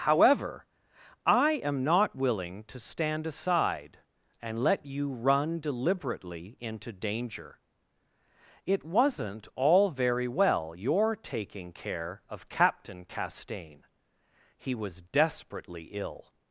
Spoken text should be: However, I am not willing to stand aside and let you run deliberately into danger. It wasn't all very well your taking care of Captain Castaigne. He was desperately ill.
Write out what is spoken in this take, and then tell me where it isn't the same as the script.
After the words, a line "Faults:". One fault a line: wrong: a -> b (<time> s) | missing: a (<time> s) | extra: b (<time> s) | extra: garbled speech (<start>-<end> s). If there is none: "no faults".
However, I am not willing to stand aside and let you run deliberately into danger. It wasn't all very well your taking care of Captain Castaigne. He was desperately ill.
Faults:
no faults